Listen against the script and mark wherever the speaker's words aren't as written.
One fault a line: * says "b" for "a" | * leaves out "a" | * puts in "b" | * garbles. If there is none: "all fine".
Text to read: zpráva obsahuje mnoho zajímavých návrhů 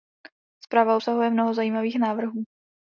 all fine